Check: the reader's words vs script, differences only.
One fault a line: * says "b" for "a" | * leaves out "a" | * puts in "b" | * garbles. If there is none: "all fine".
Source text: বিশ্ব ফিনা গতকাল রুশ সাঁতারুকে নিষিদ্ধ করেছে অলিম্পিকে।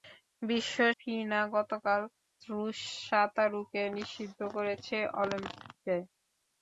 all fine